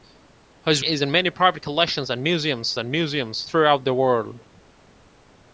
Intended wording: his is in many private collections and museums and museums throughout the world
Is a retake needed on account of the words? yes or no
no